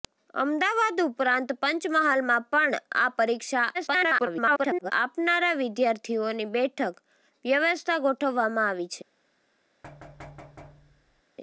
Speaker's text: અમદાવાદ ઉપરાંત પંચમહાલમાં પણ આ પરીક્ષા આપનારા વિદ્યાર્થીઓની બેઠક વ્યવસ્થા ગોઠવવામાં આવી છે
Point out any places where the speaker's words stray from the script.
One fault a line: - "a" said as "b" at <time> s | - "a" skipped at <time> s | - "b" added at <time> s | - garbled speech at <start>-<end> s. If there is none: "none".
- garbled speech at 3.7-4.9 s